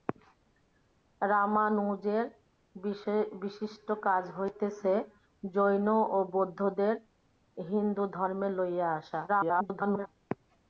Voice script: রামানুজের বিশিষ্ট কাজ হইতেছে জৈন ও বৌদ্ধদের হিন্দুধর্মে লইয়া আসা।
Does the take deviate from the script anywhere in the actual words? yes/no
yes